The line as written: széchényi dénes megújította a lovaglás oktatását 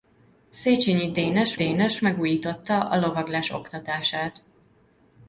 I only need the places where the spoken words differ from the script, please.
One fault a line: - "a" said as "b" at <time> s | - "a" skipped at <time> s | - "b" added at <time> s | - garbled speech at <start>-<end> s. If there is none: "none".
- "dénes" added at 1.5 s